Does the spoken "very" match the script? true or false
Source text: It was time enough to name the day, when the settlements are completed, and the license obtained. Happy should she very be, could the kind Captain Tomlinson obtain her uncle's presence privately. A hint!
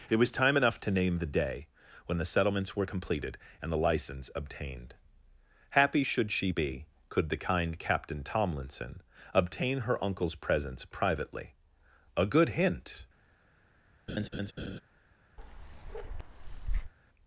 false